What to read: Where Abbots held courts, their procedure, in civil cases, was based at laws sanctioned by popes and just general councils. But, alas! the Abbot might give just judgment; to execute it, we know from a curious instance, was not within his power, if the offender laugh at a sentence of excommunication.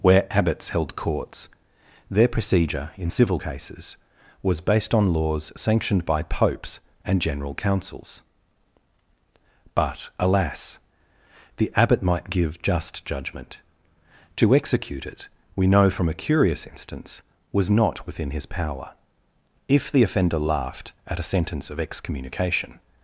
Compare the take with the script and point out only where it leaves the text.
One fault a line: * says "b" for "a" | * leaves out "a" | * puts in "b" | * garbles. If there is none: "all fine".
* says "on" for "at"
* leaves out "just"
* says "laughed" for "laugh"